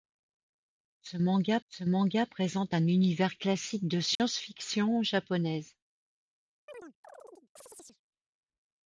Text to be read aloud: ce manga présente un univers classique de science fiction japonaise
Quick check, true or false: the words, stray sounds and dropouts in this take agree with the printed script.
false